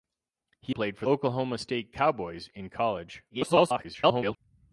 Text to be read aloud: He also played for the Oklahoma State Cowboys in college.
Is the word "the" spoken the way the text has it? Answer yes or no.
no